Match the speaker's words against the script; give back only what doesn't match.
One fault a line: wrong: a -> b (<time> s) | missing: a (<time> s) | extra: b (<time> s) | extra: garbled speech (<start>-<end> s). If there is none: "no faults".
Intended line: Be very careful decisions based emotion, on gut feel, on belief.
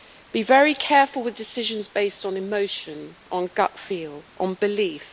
extra: with (1.2 s)
extra: on (2.2 s)